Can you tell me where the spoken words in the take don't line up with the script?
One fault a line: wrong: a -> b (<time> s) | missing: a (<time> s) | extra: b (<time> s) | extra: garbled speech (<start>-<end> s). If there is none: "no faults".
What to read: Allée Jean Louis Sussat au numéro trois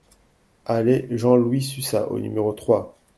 no faults